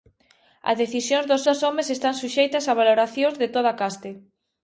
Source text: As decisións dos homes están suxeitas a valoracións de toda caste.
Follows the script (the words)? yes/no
no